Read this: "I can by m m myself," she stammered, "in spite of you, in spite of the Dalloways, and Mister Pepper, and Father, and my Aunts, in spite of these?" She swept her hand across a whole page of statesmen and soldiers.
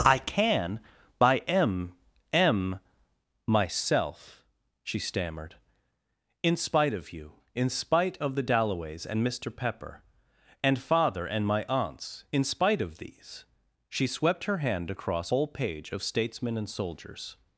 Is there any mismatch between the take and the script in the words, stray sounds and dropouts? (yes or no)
yes